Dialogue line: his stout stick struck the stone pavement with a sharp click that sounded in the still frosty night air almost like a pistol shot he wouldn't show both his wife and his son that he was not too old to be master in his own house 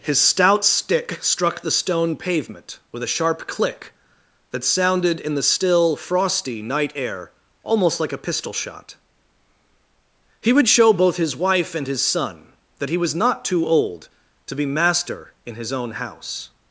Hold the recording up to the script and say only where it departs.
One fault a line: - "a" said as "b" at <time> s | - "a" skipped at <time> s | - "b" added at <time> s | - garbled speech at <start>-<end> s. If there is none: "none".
- "wouldn't" said as "would" at 10.5 s